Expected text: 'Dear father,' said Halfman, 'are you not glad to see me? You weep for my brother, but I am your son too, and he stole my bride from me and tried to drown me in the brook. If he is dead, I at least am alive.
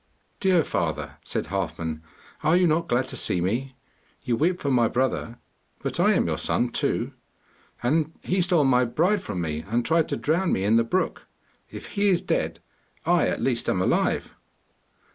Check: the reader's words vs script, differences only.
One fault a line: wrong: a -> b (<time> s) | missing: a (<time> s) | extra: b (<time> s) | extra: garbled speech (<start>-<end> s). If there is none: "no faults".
no faults